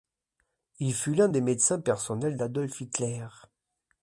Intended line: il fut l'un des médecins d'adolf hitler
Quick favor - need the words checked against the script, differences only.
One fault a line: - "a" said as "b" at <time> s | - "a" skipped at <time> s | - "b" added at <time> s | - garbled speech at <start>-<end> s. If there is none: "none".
- "personnels" added at 1.8 s